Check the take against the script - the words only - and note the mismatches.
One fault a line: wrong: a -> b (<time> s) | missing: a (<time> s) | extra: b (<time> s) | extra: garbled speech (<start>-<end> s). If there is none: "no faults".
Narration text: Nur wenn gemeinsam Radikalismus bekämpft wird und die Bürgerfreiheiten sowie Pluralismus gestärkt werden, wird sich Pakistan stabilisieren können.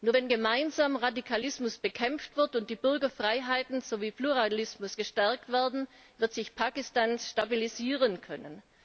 no faults